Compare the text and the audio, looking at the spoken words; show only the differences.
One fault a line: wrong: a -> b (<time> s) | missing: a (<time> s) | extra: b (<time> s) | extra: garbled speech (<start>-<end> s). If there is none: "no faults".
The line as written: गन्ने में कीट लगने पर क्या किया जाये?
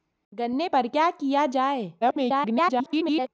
missing: में कीट लगने (0.7 s)
extra: garbled speech (2.0-3.3 s)